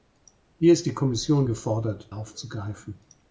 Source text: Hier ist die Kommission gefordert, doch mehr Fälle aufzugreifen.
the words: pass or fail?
fail